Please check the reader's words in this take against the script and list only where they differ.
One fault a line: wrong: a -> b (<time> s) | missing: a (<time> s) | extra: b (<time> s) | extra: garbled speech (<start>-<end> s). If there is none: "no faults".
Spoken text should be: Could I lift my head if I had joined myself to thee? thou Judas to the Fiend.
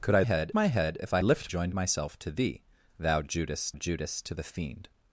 wrong: lift -> head (0.2 s)
wrong: had -> lift (1.2 s)
extra: Judas (3.7 s)